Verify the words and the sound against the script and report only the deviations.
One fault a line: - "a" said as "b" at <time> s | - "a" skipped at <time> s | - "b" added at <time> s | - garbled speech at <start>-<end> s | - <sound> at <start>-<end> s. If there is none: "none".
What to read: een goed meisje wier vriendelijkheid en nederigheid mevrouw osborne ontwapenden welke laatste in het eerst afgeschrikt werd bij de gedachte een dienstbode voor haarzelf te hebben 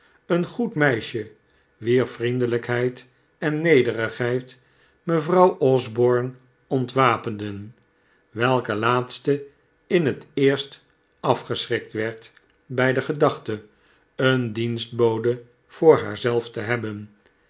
none